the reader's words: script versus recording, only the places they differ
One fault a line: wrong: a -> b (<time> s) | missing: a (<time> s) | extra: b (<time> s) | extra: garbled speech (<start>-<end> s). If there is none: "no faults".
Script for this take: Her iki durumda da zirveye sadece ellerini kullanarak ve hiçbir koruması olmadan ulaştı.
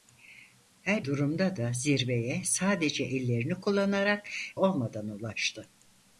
missing: iki (1.0 s)
missing: ve hiçbir koruması (4.3 s)